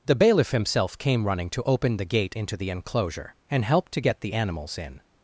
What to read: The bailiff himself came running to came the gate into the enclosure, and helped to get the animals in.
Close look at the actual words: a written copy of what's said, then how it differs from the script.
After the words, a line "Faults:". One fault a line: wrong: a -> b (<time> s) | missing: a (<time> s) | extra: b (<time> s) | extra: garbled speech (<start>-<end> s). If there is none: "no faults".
The bailiff himself came running to open the gate into the enclosure, and helped to get the animals in.
Faults:
wrong: came -> open (1.6 s)